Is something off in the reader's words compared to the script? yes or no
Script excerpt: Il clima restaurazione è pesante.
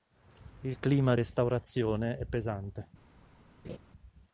no